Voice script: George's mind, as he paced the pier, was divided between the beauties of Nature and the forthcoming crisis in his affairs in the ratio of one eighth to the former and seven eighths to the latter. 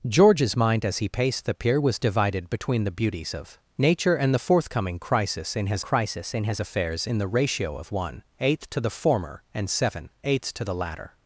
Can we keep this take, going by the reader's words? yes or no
no